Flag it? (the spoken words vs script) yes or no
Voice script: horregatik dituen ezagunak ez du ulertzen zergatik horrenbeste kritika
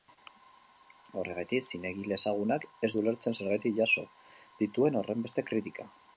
yes